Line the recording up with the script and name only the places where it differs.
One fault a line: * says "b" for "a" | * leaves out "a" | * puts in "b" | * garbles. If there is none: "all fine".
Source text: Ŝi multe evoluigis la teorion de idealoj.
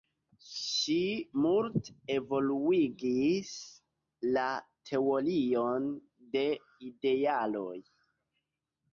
all fine